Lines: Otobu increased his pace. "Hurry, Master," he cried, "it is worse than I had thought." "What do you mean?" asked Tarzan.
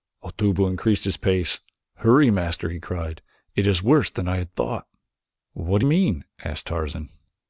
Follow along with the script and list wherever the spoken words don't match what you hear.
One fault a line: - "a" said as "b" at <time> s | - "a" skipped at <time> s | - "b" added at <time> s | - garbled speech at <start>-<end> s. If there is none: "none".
- "you" skipped at 5.8 s